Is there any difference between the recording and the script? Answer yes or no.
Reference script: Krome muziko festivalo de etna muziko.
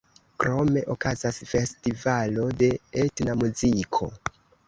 yes